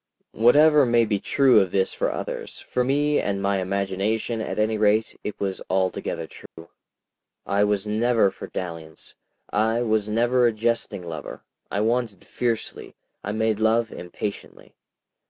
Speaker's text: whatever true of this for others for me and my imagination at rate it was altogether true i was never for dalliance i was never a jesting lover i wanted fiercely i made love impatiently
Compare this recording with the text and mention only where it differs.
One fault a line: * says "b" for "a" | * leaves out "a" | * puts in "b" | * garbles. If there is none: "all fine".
* puts in "may be"
* puts in "any"